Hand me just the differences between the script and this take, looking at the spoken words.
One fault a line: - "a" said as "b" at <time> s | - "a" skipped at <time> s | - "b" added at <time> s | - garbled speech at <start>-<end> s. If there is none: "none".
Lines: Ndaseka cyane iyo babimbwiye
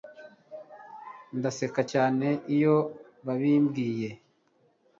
none